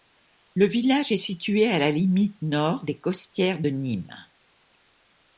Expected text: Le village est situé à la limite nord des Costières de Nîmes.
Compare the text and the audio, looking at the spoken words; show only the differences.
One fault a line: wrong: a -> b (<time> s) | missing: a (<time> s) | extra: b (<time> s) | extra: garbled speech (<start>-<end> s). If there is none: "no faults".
no faults